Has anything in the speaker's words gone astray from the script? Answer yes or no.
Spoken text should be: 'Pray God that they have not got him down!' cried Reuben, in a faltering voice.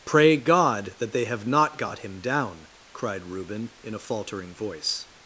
no